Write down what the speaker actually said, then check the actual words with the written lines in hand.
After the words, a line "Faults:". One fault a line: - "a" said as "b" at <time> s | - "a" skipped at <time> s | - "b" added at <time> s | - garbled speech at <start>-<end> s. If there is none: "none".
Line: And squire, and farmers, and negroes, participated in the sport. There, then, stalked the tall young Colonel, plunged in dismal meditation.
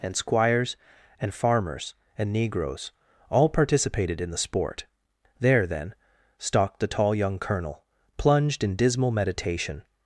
And squires, and farmers, and negroes, all participated in the sport. There, then, stalked the tall young Colonel, plunged in dismal meditation.
Faults:
- "squire" said as "squires" at 0.1 s
- "all" added at 3.3 s